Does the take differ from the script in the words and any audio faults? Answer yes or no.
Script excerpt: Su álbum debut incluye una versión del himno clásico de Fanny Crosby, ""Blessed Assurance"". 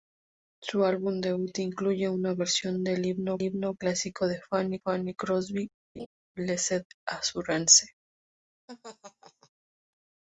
yes